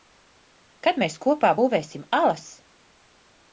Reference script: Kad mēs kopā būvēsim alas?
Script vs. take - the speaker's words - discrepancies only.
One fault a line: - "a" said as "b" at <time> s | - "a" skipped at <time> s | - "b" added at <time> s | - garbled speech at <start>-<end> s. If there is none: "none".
none